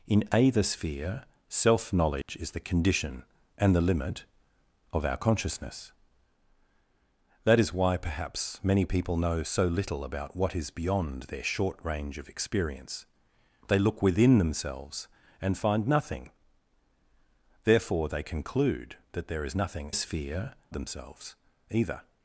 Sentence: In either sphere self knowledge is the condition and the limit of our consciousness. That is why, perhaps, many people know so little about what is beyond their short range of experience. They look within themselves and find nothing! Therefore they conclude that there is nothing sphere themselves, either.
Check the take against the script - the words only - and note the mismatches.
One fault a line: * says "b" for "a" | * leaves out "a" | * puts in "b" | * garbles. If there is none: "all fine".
all fine